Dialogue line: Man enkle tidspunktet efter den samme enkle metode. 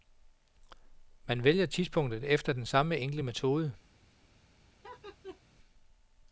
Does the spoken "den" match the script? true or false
true